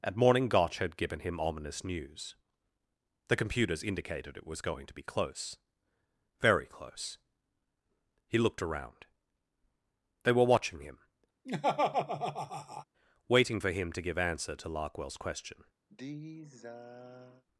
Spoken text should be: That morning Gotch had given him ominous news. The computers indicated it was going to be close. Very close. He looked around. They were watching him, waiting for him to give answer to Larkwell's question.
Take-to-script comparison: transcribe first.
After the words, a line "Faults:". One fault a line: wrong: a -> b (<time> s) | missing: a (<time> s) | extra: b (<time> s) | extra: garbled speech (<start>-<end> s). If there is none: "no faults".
At morning Gotch had given him ominous news. The computers indicated it was going to be close. Very close. He looked around. They were watching him, waiting for him to give answer to Larkwell's question.
Faults:
wrong: That -> At (0.0 s)